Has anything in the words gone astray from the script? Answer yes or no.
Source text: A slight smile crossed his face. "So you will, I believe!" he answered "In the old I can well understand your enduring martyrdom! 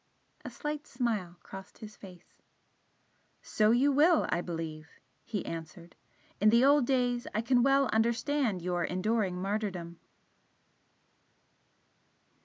yes